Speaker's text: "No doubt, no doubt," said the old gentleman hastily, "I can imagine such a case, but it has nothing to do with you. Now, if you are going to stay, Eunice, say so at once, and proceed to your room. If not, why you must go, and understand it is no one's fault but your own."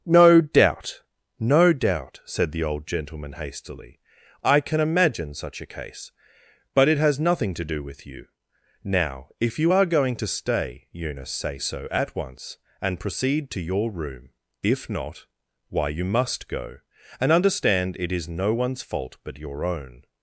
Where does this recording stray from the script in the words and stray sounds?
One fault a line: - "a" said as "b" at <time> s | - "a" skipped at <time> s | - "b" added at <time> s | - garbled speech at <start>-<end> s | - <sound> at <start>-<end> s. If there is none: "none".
none